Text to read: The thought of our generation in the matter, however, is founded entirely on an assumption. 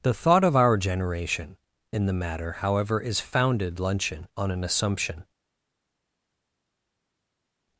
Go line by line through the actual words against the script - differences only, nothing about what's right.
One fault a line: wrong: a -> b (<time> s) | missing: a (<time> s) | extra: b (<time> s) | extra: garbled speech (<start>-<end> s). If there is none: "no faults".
wrong: entirely -> luncheon (3.8 s)